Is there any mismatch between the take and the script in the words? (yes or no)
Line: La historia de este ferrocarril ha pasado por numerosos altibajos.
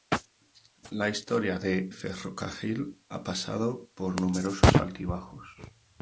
yes